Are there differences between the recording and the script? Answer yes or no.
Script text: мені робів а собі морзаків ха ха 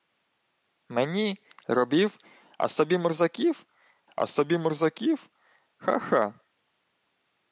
yes